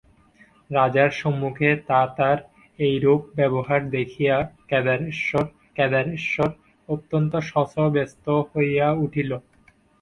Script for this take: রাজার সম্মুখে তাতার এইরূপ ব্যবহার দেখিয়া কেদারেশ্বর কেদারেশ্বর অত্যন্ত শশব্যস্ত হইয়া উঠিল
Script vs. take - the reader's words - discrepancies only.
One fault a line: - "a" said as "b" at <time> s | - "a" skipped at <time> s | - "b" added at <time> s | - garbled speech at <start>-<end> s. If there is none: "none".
none